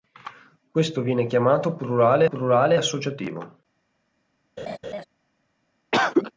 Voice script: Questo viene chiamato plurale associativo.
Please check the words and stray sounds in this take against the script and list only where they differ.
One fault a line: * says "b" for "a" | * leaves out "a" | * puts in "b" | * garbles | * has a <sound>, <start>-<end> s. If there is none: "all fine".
* puts in "plurale"
* has a laugh, 4.6-5.0 s
* has a cough, 5.9-6.3 s